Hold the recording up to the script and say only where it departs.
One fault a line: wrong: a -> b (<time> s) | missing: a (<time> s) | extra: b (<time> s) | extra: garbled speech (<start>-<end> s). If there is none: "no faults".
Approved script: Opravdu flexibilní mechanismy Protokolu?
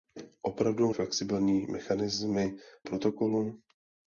no faults